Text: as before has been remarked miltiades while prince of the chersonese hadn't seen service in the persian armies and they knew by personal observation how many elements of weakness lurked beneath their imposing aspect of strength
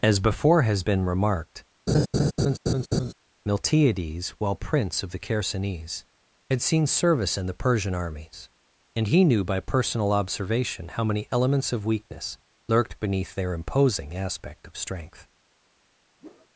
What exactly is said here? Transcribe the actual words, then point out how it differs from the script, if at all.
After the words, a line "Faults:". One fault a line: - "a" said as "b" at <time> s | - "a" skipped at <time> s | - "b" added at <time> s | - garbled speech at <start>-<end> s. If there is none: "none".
as before has been remarked miltiades while prince of the chersonese had seen service in the persian armies and he knew by personal observation how many elements of weakness lurked beneath their imposing aspect of strength
Faults:
- "hadn't" said as "had" at 6.5 s
- "they" said as "he" at 9.1 s